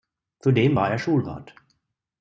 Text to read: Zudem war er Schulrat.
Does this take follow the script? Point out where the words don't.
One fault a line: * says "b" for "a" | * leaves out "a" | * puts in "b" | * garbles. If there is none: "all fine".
all fine